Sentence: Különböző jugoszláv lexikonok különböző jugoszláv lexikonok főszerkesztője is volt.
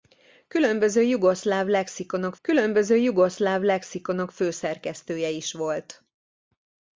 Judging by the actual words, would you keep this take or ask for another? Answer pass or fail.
pass